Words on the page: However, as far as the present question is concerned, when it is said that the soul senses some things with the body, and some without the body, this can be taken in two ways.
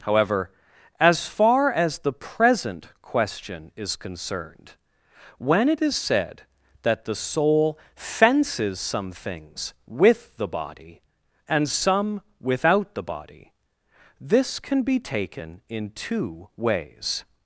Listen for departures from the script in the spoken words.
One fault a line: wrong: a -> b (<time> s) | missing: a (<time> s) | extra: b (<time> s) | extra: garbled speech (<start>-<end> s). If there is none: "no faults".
wrong: senses -> fences (8.0 s)